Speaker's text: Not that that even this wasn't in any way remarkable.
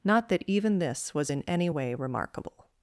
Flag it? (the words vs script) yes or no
yes